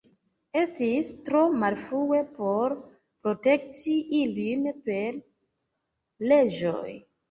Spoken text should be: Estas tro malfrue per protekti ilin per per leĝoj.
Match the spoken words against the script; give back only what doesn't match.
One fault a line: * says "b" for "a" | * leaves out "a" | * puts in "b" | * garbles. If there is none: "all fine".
* says "Estis" for "Estas"
* says "por" for "per"
* leaves out "per"